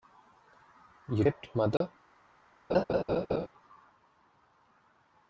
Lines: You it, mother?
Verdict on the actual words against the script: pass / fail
pass